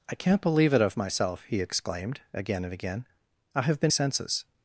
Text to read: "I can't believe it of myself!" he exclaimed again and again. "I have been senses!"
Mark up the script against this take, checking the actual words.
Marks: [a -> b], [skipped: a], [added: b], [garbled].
"I can't believe it of myself!" he exclaimed again and again. "I have been senses!"